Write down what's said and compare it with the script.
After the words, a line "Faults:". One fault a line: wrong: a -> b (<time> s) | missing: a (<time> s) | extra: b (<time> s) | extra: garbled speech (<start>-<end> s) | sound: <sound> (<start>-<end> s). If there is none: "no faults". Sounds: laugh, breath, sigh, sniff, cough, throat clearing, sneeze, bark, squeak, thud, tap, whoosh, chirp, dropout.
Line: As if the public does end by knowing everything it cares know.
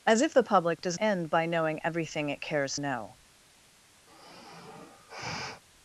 As if the public does end by knowing everything it cares know.
Faults:
sound: sigh (4.1-5.6 s)